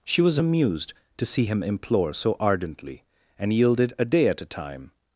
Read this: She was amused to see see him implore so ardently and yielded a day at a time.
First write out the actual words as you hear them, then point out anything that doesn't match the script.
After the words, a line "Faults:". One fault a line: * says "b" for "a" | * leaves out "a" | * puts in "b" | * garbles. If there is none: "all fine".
She was amused to see him implore so ardently and yielded a day at a time.
Faults:
* leaves out "see"